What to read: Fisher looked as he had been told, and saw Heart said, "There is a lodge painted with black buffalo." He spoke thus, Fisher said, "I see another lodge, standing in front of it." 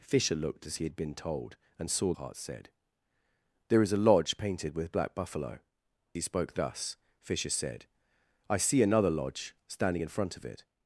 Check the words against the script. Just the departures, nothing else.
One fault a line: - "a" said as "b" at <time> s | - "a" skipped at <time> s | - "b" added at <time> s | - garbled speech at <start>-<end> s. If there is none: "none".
none